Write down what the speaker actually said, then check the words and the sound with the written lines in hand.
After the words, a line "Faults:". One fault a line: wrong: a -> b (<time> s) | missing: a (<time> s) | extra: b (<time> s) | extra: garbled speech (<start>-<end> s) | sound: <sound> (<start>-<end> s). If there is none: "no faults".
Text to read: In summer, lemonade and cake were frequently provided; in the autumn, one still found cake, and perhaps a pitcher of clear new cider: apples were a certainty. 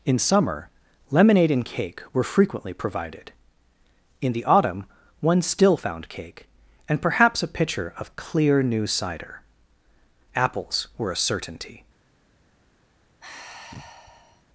In summer, lemonade and cake were frequently provided; in the autumn, one still found cake, and perhaps a pitcher of clear new cider: apples were a certainty.
Faults:
sound: sigh (13.2-14.4 s)